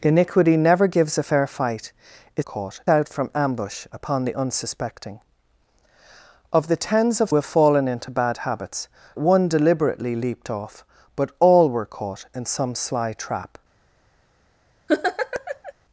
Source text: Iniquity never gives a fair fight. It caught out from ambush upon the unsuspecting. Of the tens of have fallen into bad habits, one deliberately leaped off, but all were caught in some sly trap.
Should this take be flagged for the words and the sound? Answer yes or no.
yes